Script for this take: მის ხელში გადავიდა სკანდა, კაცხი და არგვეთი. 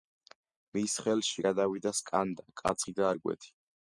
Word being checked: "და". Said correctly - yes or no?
yes